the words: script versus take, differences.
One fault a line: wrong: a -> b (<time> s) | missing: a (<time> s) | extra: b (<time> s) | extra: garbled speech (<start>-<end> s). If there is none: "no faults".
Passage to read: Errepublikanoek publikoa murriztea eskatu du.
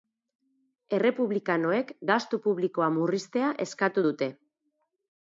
extra: gastu (2.1 s)
wrong: du -> dute (4.1 s)